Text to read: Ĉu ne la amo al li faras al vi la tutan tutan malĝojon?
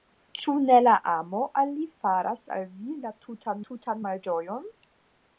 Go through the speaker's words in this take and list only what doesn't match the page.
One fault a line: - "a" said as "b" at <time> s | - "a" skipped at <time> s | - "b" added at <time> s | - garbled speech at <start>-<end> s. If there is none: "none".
none